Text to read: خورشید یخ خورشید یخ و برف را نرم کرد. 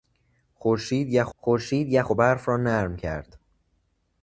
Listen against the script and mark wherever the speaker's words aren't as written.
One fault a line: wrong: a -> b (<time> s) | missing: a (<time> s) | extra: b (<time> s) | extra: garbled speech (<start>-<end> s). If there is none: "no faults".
no faults